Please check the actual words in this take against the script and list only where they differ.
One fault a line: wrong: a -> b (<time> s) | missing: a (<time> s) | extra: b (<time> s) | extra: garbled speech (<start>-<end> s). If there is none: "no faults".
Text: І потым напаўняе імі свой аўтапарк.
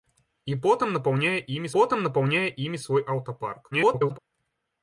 extra: потым напаўняе імі (1.7 s)
extra: garbled speech (3.7-4.2 s)